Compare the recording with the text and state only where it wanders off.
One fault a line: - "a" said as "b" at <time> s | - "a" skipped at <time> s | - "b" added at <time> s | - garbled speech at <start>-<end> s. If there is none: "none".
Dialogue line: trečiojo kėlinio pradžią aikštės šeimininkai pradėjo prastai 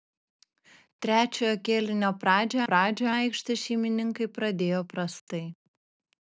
- "pradžią" added at 2.7 s